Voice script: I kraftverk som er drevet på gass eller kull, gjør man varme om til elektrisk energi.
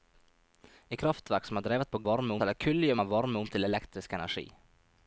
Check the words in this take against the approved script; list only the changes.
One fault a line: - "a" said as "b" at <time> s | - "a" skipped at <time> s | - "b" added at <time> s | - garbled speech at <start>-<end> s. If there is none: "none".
- "gass" said as "varme" at 2.1 s